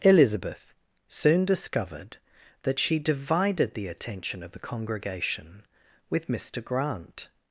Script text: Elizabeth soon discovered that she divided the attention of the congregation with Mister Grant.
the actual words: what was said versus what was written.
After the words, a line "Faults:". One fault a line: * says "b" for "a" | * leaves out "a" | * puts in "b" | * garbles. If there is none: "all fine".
Elizabeth soon discovered that she divided the attention of the congregation with Mister Grant.
Faults:
all fine